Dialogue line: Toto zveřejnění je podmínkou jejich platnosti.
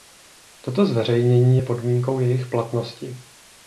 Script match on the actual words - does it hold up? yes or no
yes